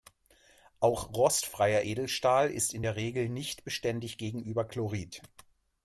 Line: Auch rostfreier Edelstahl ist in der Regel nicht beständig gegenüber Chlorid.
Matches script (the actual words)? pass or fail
pass